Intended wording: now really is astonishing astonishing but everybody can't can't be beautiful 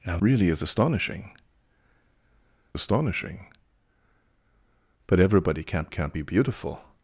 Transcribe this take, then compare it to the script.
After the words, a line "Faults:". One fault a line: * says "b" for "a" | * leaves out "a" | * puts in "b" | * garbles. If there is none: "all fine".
now really is astonishing astonishing but everybody can't can't be beautiful
Faults:
all fine